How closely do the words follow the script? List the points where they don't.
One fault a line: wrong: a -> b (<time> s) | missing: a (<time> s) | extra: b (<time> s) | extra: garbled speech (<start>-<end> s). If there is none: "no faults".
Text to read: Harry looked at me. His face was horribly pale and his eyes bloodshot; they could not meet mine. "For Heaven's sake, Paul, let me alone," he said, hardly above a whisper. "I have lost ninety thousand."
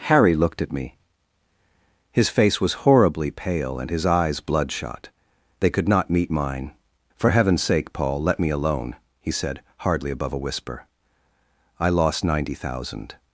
missing: have (11.9 s)